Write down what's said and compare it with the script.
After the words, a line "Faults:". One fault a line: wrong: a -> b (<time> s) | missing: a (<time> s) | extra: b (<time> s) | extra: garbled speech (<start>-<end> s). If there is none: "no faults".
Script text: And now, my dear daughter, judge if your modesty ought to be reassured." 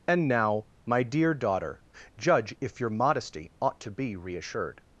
And now, my dear daughter, judge if your modesty ought to be reassured."
Faults:
no faults